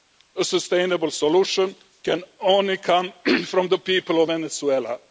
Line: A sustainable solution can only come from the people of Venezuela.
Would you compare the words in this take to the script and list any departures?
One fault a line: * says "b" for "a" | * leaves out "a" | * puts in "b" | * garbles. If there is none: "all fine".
all fine